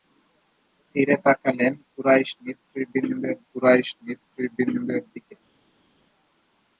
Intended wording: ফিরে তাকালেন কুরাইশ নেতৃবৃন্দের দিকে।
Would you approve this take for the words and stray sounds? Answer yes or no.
no